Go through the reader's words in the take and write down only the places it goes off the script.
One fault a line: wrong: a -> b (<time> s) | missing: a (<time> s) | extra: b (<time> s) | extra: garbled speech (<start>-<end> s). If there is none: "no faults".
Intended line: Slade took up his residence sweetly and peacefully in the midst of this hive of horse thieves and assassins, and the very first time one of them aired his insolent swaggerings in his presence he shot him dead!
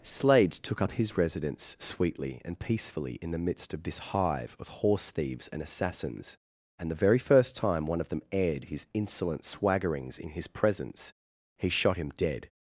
no faults